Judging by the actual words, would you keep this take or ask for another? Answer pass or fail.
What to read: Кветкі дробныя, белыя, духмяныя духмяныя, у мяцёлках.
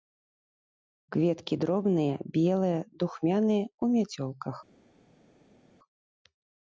fail